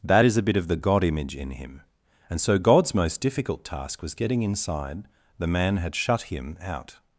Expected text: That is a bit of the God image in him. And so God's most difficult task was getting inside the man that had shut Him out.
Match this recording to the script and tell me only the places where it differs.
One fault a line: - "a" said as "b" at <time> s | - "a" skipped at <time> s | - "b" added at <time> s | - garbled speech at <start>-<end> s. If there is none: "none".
- "that" skipped at 5.8 s